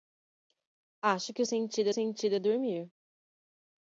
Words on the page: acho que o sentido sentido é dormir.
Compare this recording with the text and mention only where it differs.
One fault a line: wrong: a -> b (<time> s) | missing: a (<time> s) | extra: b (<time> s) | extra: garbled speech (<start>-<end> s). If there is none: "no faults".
no faults